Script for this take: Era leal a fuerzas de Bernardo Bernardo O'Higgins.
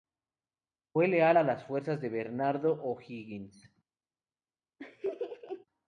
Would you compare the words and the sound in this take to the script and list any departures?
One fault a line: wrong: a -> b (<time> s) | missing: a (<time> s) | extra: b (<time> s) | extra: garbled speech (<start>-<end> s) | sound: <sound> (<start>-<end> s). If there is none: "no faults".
wrong: Era -> Fue (0.9 s)
extra: las (1.4 s)
missing: Bernardo (2.8 s)
sound: laugh (4.8-5.7 s)